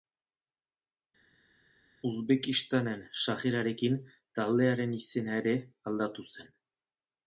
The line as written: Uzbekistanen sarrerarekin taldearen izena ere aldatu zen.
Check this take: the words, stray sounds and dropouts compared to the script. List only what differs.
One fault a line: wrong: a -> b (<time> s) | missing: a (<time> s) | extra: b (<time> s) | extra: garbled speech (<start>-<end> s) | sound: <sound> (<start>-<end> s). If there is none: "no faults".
no faults